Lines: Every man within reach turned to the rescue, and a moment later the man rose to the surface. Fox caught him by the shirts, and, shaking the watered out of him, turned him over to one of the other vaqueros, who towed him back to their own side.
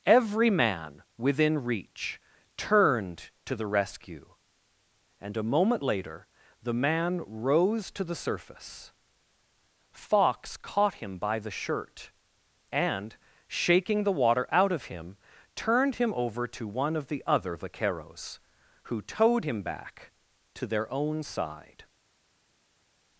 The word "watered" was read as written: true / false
false